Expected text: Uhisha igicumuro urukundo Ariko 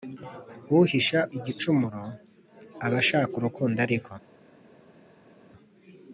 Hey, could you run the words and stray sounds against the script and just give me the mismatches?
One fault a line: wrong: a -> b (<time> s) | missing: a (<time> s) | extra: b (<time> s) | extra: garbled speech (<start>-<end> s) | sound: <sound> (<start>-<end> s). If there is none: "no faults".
extra: aba ashaka (2.8 s)